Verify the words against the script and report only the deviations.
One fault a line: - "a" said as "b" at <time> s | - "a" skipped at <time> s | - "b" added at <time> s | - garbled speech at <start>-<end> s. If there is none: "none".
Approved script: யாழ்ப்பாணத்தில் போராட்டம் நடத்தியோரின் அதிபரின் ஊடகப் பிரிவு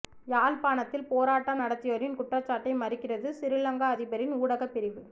- "குற்றச்சாட்டை மறுக்கிறது சிறிலங்கா" added at 2.2 s